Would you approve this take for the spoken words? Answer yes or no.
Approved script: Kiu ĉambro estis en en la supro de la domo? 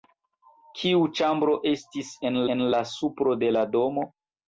yes